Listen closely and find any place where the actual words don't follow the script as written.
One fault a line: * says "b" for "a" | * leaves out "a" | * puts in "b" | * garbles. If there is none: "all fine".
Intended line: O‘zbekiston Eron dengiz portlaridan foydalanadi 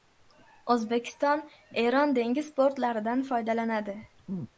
all fine